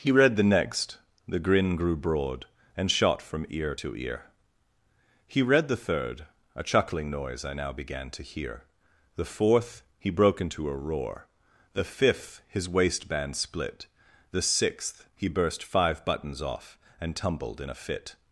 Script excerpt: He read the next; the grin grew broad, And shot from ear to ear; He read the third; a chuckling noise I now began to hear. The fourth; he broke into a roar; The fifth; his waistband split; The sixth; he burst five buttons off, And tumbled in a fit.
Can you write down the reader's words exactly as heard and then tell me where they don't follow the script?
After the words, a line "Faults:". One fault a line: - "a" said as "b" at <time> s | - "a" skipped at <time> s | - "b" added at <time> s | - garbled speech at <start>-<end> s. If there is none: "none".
He read the next; the grin grew broad, And shot from ear to ear; He read the third; a chuckling noise I now began to hear. The fourth; he broke into a roar; The fifth; his waistband split; The sixth; he burst five buttons off, And tumbled in a fit.
Faults:
none